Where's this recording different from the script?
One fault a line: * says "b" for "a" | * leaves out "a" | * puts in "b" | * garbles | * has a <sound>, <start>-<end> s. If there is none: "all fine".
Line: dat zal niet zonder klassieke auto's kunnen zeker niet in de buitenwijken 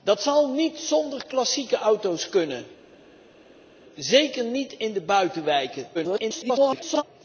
* garbles